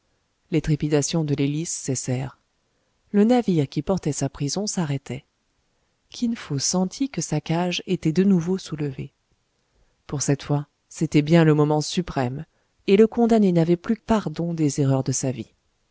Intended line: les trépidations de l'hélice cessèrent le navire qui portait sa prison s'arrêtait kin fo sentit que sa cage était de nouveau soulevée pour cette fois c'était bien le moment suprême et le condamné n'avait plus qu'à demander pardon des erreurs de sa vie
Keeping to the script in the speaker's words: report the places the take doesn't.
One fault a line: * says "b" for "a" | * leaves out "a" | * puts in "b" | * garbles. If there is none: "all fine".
* leaves out "qu'à demander"